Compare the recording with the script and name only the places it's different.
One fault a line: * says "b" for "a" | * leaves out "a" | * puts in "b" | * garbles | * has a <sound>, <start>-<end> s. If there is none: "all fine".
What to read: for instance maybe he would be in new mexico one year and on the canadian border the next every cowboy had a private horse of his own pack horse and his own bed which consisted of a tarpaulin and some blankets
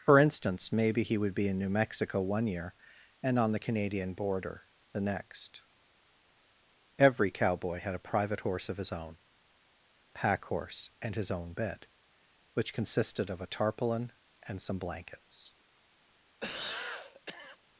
* has a cough, 16.4-17.6 s